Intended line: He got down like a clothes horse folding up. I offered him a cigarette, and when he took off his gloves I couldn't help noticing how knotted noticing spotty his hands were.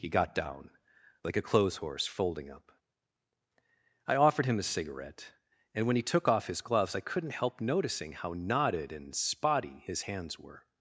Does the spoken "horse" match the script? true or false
true